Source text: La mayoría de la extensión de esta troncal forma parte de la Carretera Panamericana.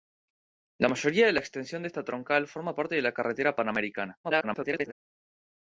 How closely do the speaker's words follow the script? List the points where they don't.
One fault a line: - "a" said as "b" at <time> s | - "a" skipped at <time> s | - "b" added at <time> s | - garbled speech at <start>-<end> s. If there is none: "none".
- garbled speech at 4.2-4.9 s